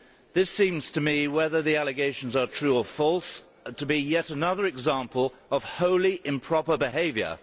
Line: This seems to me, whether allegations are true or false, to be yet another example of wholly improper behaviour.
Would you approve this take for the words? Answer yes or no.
no